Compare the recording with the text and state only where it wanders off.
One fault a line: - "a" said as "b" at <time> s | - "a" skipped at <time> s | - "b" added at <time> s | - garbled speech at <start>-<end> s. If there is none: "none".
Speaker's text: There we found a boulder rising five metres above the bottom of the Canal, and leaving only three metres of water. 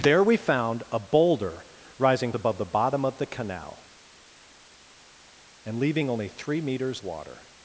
- "five metres" skipped at 2.3 s
- "of" skipped at 7.0 s